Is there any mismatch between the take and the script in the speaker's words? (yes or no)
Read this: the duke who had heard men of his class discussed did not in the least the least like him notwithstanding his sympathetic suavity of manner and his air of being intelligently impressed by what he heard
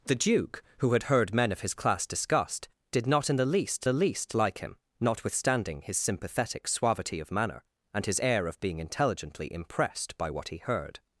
no